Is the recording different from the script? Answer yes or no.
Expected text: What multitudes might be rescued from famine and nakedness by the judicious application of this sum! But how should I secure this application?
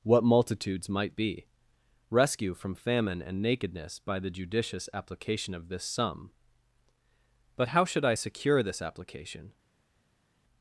yes